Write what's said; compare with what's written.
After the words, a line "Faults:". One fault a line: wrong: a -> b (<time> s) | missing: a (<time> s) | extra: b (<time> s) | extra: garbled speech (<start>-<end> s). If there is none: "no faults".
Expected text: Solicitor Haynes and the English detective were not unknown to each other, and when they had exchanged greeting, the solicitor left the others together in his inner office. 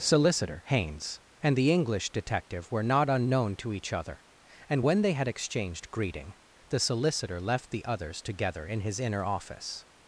Solicitor Haynes and the English detective were not unknown to each other, and when they had exchanged greeting, the solicitor left the others together in his inner office.
Faults:
no faults